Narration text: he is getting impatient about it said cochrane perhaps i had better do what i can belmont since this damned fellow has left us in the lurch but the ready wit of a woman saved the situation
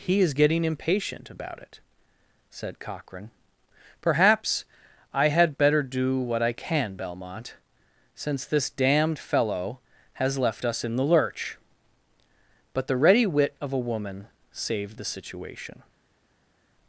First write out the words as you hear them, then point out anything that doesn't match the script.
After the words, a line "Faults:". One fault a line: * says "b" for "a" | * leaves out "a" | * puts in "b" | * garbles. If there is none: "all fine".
he is getting impatient about it said cochrane perhaps i had better do what i can belmont since this damned fellow has left us in the lurch but the ready wit of a woman saved the situation
Faults:
all fine